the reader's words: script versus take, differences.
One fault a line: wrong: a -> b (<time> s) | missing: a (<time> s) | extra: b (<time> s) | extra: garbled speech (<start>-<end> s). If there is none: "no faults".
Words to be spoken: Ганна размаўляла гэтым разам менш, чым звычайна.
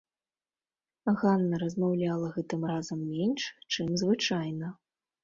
no faults